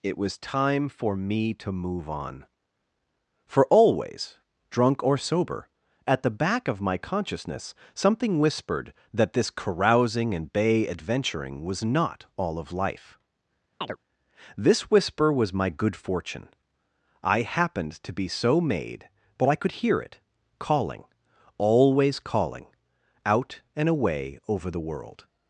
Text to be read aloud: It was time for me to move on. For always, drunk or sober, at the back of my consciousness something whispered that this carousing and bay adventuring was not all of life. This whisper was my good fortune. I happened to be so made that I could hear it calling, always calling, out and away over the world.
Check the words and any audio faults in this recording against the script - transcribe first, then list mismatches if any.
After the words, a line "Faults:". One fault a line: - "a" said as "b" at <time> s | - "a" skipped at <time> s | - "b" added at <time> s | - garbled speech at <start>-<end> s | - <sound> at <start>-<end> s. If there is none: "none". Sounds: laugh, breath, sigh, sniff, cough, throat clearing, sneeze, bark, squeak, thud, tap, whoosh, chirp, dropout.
It was time for me to move on. For always, drunk or sober, at the back of my consciousness something whispered that this carousing and bay adventuring was not all of life. This whisper was my good fortune. I happened to be so made but I could hear it calling, always calling, out and away over the world.
Faults:
- chirp at 13.8-14.0 s
- "that" said as "but" at 19.4 s